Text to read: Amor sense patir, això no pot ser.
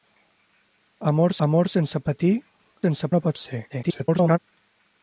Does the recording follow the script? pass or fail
fail